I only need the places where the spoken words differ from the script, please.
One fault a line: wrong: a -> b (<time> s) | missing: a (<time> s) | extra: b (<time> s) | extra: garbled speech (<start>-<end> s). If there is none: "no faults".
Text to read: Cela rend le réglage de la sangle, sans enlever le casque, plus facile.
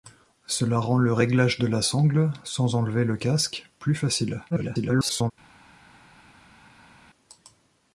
extra: garbled speech (4.5-5.3 s)